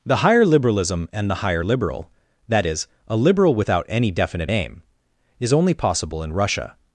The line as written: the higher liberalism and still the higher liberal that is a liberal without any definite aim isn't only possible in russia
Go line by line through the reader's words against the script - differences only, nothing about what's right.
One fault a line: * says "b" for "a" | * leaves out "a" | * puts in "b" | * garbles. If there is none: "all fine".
* leaves out "still"
* says "is" for "isn't"